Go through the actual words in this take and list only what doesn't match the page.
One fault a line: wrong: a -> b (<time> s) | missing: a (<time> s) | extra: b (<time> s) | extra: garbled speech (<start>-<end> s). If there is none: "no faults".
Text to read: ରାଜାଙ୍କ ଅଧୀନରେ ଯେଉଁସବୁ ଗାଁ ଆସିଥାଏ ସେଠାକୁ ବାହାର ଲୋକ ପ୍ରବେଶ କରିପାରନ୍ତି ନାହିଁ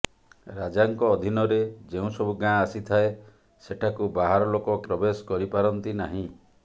no faults